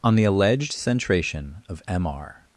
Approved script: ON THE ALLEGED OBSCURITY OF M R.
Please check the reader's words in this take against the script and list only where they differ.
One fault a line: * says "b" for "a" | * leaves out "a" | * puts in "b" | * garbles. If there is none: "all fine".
* says "Centration" for "OBSCURITY"